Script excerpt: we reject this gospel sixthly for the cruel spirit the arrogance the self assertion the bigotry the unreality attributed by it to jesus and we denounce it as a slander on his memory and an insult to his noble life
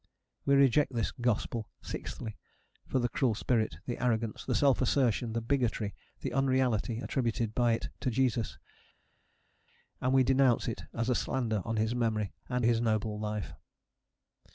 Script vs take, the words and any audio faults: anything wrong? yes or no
yes